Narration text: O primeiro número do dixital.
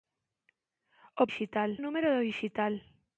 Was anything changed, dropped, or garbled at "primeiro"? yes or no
yes